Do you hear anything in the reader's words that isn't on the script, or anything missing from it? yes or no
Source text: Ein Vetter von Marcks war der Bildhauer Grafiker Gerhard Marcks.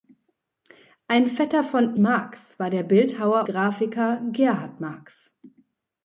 no